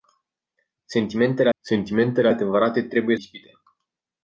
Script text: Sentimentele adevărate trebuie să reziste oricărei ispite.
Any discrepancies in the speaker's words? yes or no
yes